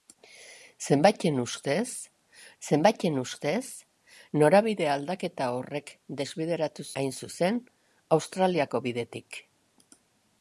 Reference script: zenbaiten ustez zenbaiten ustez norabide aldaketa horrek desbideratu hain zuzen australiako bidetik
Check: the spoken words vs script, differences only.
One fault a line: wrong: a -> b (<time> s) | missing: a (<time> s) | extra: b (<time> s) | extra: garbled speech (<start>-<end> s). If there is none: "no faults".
no faults